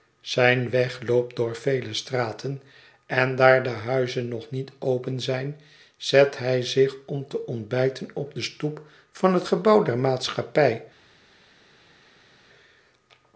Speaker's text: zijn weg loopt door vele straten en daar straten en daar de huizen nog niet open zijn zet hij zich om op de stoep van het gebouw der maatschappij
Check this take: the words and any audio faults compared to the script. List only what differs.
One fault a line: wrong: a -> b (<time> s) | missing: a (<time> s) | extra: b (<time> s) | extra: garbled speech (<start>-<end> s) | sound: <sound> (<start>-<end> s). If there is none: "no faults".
missing: straten en daar (3.6 s)
extra: te ontbijten (7.3 s)